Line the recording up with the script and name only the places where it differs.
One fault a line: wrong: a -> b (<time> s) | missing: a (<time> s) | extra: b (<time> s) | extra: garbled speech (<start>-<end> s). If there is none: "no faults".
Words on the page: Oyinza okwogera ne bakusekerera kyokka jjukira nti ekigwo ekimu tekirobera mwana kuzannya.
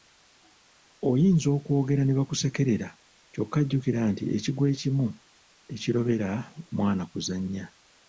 no faults